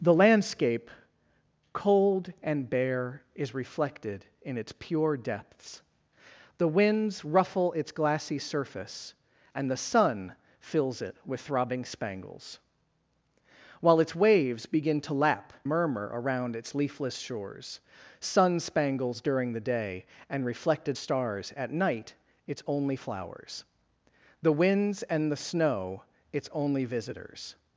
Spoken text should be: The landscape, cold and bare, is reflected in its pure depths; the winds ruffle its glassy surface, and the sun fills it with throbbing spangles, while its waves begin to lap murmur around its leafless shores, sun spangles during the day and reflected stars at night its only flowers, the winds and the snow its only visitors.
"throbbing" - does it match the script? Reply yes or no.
yes